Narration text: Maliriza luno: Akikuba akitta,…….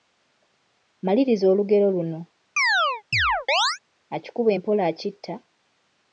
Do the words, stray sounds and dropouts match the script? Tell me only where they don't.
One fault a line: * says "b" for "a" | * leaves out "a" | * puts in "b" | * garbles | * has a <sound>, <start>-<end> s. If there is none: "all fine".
* puts in "olugero"
* has a chirp, 2.6-3.8 s
* puts in "empola"